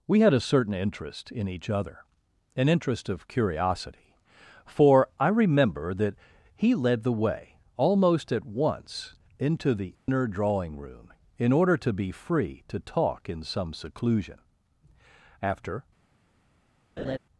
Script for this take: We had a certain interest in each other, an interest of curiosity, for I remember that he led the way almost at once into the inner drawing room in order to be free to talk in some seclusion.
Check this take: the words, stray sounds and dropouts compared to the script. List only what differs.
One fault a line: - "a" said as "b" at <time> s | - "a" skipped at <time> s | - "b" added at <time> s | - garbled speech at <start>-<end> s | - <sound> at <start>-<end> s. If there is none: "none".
- dropout at 9.9-10.1 s
- "After" added at 15.4 s
- laugh at 17.0-17.2 s